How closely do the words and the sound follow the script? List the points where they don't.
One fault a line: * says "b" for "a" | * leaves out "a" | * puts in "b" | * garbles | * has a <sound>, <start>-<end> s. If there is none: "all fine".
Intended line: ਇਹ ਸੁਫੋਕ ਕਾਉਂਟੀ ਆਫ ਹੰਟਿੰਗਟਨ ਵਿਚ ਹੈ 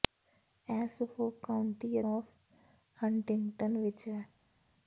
all fine